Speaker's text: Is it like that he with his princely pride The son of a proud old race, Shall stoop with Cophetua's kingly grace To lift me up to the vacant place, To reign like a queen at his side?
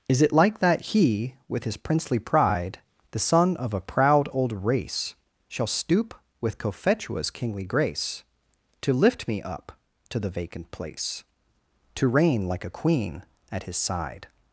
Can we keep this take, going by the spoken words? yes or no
yes